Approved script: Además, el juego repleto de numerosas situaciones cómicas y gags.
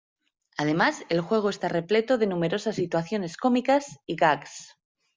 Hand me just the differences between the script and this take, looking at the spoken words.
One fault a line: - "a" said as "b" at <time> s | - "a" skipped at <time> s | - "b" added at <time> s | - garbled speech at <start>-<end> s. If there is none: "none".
- "está" added at 1.5 s